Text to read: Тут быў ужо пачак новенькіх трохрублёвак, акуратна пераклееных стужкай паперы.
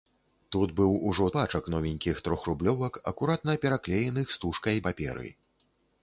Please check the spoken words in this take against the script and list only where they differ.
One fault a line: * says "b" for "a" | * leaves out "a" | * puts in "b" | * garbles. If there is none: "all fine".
all fine